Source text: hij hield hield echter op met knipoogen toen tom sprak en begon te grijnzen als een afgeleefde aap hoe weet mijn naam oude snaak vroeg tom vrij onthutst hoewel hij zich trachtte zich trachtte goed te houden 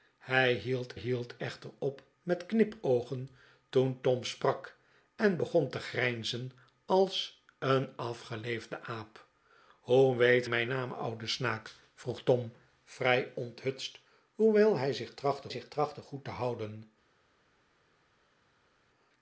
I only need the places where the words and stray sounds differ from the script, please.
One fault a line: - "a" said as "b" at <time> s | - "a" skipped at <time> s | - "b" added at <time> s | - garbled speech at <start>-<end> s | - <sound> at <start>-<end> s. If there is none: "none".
none